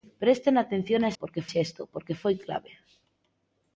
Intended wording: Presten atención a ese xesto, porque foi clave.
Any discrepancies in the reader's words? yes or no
yes